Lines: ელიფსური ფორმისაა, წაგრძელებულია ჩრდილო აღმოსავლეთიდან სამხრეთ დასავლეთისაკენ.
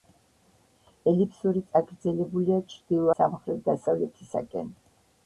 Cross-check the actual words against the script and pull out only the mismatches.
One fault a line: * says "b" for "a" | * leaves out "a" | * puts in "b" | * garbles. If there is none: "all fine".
* leaves out "ფორმისაა"
* leaves out "აღმოსავლეთიდან"